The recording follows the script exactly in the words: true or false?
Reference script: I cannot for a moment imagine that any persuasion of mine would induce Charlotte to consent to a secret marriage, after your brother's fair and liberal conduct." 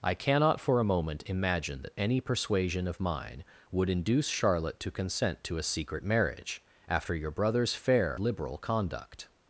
false